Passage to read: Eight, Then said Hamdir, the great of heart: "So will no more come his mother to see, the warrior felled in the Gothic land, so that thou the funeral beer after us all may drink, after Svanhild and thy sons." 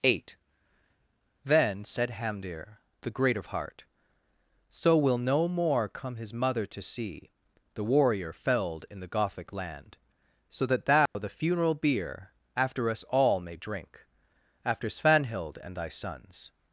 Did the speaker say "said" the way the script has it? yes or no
yes